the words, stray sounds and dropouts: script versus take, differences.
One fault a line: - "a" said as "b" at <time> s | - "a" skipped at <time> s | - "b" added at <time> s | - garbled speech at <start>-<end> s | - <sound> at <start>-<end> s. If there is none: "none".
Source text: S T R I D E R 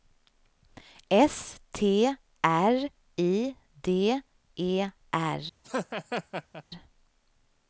- laugh at 5.6-6.6 s